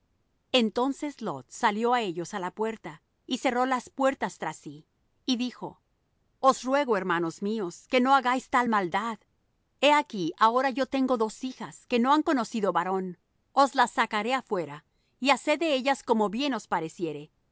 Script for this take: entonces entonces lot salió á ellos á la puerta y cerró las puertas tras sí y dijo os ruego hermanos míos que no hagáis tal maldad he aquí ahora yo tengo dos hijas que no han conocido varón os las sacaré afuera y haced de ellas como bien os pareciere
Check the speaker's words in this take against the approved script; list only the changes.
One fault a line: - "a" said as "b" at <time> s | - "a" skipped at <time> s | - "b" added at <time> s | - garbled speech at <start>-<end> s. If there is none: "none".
- "entonces" skipped at 1.2 s